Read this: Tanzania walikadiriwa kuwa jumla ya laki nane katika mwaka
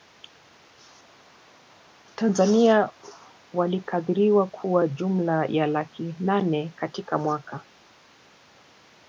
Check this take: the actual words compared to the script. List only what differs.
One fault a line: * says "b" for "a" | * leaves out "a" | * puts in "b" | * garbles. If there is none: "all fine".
all fine